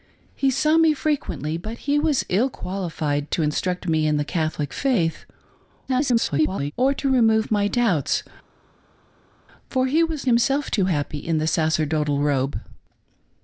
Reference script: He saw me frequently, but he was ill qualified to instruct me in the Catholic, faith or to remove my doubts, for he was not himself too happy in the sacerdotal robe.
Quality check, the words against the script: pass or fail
fail